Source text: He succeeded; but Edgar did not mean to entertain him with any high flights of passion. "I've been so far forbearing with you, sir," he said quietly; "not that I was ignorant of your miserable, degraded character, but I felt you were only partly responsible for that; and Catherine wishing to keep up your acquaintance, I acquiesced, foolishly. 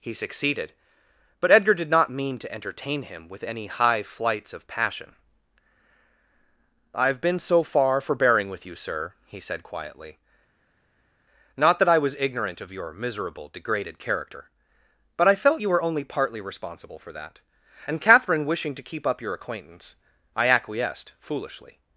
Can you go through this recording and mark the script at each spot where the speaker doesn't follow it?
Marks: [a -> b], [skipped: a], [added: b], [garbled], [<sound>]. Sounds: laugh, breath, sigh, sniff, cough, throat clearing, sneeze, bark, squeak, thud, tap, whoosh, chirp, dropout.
He succeeded; but Edgar did not mean to entertain him with any high flights of passion. "I've been so far forbearing with you, sir," he said quietly; "not that I was ignorant of your miserable, degraded character, but I felt you were only partly responsible for that; and Catherine wishing to keep up your acquaintance, I acquiesced, foolishly.